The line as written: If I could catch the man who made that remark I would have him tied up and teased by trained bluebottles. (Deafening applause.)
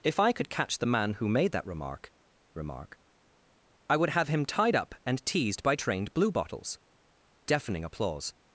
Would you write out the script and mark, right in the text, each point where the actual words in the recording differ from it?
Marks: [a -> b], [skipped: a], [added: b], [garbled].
If I could catch the man who made that remark [added: remark] I would have him tied up and teased by trained bluebottles. (Deafening applause.)